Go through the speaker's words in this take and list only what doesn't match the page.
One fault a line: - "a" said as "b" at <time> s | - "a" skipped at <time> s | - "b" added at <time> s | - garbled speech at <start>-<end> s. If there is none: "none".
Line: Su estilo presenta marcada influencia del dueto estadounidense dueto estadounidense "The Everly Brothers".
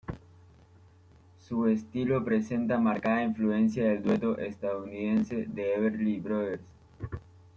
- "dueto estadounidense" skipped at 5.4 s